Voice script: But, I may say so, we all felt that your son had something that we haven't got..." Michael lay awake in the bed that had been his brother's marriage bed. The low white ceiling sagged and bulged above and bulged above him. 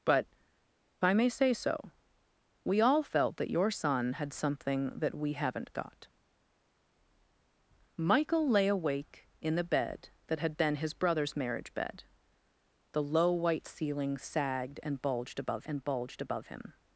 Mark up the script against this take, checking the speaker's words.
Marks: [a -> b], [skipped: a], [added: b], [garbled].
But, I may say so, we all felt that your son had something that we haven't got..." Michael lay awake in the bed that had been his brother's marriage bed. The low white ceiling sagged and bulged above and bulged above him.